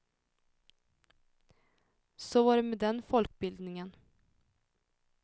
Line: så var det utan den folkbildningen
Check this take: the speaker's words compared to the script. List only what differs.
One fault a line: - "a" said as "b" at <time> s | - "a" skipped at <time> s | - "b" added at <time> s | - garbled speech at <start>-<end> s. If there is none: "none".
- "utan" said as "med" at 2.6 s